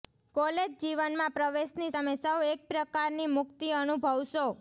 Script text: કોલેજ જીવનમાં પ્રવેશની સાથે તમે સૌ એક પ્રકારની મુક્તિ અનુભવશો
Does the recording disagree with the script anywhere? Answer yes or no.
yes